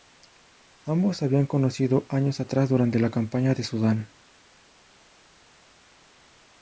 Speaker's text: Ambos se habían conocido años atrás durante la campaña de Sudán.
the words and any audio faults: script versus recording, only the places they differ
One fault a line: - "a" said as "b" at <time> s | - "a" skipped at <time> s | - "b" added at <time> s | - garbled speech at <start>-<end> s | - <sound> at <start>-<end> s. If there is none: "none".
none